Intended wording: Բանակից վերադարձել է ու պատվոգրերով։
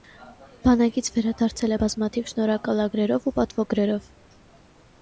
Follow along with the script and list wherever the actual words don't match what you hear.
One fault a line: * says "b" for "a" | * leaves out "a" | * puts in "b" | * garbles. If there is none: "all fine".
* puts in "բազմաթիվ շնորհակալագրերով"